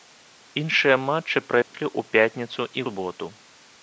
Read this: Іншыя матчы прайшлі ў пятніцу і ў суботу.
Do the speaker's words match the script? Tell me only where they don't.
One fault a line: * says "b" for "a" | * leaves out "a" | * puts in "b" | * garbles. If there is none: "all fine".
* leaves out "ў"